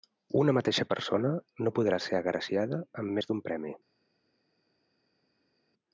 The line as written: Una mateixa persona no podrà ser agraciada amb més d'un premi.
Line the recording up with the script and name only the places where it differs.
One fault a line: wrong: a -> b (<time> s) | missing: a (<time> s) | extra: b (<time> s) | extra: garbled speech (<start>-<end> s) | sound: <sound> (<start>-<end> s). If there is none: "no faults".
no faults